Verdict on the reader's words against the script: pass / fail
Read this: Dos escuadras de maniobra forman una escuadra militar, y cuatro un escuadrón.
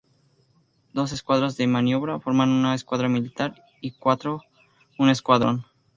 pass